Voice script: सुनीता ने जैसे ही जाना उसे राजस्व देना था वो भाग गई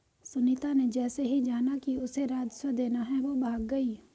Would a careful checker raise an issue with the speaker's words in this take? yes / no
yes